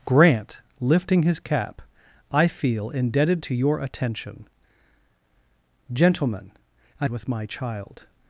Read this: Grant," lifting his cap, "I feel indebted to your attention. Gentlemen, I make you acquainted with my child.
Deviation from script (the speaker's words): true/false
true